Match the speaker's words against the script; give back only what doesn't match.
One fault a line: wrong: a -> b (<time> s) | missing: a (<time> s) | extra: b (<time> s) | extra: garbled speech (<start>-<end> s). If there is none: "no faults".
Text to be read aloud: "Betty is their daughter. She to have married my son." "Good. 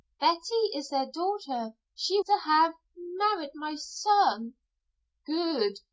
no faults